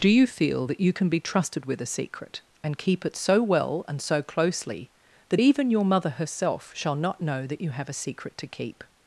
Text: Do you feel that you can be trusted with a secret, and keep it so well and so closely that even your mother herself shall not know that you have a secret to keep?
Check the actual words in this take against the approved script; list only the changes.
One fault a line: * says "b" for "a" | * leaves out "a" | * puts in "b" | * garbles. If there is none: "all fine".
all fine